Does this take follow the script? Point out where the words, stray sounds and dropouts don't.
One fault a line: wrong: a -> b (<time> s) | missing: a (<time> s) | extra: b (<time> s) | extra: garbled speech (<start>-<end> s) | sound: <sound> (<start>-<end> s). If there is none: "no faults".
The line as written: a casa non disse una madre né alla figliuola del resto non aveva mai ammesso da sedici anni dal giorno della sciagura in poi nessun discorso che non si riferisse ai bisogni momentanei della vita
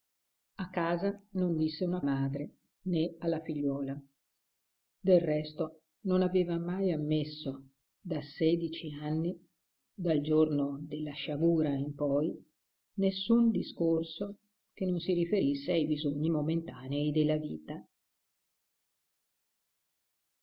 no faults